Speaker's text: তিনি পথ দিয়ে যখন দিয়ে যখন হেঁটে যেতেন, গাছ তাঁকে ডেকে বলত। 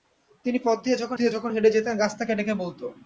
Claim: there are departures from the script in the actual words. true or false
false